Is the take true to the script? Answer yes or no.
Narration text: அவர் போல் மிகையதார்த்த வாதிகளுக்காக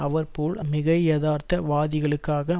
yes